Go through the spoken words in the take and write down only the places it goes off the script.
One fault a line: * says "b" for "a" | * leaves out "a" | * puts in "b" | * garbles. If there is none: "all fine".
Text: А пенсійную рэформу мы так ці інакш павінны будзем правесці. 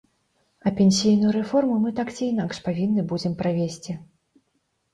all fine